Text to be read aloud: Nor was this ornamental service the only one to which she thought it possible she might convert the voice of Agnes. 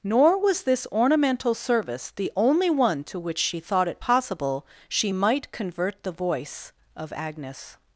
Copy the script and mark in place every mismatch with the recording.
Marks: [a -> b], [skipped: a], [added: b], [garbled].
Nor was this ornamental service the only one to which she thought it possible she might convert the voice of Agnes.